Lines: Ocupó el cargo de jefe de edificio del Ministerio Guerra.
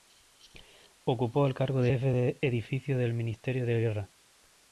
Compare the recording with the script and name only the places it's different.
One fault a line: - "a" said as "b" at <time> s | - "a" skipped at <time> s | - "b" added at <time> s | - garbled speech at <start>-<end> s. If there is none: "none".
- "de" added at 3.6 s